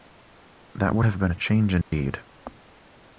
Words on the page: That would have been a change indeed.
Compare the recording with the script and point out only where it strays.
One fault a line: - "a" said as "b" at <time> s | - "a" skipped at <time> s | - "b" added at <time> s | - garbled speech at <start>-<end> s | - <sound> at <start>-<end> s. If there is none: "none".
- dropout at 1.8-1.9 s